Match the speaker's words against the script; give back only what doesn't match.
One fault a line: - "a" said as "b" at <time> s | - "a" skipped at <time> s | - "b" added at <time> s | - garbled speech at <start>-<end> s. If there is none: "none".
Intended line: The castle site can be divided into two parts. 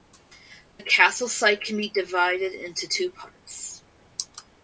none